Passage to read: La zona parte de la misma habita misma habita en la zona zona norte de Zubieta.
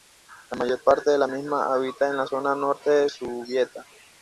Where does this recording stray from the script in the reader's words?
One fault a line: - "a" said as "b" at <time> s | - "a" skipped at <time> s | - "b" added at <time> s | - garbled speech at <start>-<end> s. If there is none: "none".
- "zona" said as "mayor" at 0.6 s
- "misma habita" skipped at 2.1 s
- "zona" skipped at 2.5 s